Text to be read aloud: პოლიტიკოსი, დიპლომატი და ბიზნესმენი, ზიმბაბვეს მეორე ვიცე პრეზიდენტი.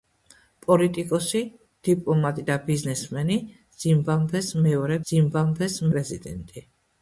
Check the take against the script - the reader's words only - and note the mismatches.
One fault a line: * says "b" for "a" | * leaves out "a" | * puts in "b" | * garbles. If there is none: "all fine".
* says "ზიმბაბვეს" for "ვიცე"